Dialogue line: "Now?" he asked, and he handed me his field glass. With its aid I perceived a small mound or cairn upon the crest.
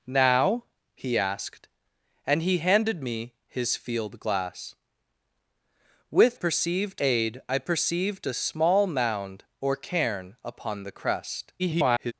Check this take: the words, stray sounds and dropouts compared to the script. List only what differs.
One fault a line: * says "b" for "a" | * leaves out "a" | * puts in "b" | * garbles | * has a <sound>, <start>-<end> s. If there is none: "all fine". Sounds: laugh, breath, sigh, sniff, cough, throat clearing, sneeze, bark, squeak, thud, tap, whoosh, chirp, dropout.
* says "perceived" for "its"
* garbles